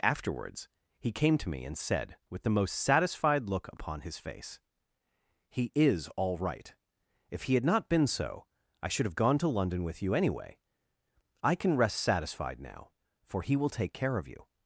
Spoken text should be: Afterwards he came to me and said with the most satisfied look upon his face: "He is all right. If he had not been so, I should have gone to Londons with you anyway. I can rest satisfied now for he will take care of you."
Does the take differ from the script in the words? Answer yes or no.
yes